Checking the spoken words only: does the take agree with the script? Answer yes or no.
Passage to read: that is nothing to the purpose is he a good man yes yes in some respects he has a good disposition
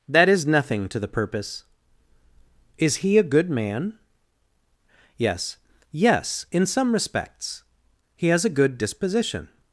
yes